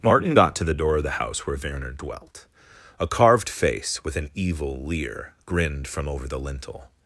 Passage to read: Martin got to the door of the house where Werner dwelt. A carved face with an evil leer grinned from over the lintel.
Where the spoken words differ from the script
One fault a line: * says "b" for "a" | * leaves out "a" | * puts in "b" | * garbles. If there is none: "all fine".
all fine